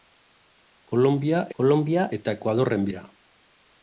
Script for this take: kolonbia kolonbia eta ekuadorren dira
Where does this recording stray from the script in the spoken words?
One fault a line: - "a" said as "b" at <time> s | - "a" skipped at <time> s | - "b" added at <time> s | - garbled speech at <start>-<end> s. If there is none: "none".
none